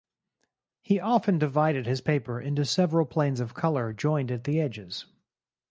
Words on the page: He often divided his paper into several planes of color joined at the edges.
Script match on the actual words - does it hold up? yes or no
yes